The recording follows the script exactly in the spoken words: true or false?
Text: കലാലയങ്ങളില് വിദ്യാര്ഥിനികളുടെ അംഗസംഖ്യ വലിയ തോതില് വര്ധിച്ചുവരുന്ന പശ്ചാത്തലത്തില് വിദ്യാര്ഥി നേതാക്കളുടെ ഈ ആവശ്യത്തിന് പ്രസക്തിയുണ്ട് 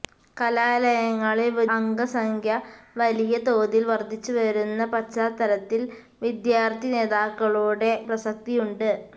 false